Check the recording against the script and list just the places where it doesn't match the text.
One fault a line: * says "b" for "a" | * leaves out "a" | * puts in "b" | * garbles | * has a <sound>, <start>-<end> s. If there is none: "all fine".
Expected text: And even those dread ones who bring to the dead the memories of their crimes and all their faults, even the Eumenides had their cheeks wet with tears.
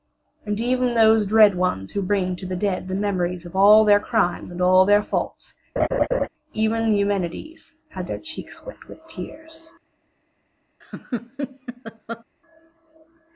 * puts in "all"
* has a laugh, 5.8-6.3 s
* has a laugh, 10.8-12.2 s